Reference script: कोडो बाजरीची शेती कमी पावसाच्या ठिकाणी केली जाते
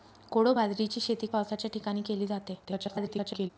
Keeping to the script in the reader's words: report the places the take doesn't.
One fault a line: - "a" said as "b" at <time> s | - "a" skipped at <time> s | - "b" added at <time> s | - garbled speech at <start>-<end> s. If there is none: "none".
- "कमी" skipped at 1.3 s
- garbled speech at 2.6-3.5 s